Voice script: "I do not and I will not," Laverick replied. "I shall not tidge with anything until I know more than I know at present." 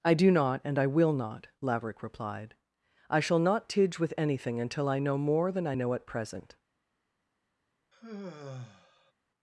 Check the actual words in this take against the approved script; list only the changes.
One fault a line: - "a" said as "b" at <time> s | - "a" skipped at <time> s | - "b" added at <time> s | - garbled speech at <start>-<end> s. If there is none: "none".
none